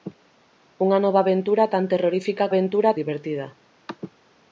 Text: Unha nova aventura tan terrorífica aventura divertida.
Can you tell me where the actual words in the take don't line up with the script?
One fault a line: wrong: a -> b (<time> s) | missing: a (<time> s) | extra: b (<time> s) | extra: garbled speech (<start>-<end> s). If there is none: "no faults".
no faults